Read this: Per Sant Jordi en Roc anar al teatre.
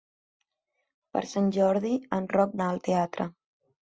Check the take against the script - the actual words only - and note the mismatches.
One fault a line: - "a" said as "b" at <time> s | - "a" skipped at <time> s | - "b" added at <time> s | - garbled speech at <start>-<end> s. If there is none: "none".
none